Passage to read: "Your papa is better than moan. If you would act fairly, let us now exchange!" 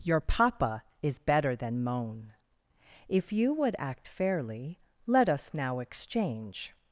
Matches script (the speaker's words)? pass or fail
pass